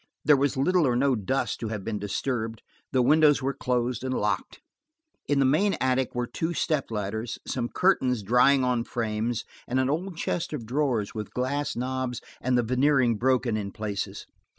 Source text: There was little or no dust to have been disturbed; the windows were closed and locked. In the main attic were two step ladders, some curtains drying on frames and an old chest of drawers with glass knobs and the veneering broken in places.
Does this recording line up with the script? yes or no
yes